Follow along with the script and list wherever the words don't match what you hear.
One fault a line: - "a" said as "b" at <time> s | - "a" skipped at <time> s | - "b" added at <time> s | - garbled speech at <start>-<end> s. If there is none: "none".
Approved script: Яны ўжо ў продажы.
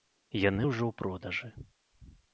none